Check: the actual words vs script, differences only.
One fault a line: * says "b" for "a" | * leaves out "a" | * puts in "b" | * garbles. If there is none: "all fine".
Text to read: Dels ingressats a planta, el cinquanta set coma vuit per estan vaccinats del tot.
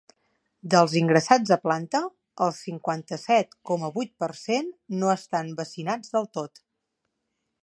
* puts in "cent no"